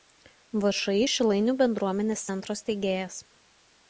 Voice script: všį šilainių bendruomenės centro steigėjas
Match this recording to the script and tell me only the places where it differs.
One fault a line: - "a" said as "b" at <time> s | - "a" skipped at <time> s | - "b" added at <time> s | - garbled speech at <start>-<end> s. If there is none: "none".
none